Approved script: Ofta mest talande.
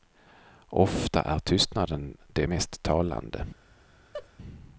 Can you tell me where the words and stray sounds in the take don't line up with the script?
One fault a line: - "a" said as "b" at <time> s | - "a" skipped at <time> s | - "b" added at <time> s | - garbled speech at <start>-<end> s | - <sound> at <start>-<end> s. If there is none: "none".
- "är tystnaden det" added at 1.2 s
- laugh at 4.1-4.3 s